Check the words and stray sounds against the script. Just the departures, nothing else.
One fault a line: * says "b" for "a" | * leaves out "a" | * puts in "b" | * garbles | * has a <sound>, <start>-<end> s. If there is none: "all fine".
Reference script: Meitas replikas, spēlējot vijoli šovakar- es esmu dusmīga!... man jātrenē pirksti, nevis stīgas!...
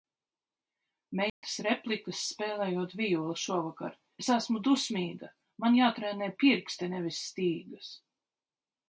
* has a dropout, 1.3-1.4 s